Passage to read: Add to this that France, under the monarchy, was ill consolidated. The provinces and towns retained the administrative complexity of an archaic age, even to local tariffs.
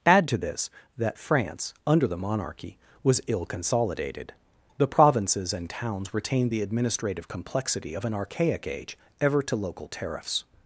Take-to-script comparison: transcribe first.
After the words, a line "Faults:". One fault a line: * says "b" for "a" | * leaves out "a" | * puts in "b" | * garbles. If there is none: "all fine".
Add to this that France, under the monarchy, was ill consolidated. The provinces and towns retained the administrative complexity of an archaic age, ever to local tariffs.
Faults:
* says "ever" for "even"